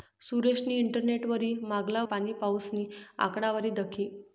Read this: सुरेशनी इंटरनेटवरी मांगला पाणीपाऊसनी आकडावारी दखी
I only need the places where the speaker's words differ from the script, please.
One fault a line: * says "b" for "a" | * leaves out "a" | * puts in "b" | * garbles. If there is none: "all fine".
all fine